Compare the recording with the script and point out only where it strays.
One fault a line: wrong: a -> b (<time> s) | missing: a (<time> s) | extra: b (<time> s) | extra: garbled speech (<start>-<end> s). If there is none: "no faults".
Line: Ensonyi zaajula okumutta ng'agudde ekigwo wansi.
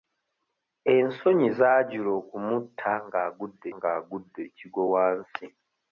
extra: ng'agudde (3.7 s)